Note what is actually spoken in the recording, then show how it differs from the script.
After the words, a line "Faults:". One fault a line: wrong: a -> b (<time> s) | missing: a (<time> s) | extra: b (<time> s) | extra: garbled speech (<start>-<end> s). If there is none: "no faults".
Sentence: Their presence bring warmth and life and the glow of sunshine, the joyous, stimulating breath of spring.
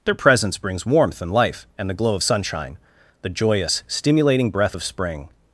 Their presence brings warmth and life and the glow of sunshine, the joyous, stimulating breath of spring.
Faults:
wrong: bring -> brings (0.6 s)